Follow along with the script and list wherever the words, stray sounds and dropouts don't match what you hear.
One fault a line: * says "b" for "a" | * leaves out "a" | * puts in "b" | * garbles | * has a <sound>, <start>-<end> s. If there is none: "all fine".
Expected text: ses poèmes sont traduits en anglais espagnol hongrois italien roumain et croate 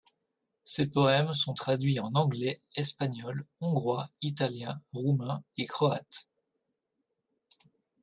all fine